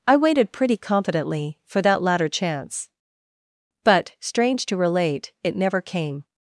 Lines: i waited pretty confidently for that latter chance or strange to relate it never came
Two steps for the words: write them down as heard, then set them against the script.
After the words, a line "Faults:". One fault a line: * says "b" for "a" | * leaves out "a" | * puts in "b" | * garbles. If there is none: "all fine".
i waited pretty confidently for that latter chance but strange to relate it never came
Faults:
* says "but" for "or"